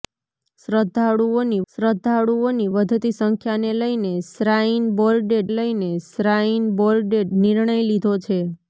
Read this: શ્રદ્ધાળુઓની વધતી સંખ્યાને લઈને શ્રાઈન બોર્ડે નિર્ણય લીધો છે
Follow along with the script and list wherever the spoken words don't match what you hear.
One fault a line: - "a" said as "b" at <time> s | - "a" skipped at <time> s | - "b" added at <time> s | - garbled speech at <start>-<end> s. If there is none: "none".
- "શ્રદ્ધાળુઓની" added at 1.7 s
- "લઈને શ્રાઈન બોર્ડે" added at 5.5 s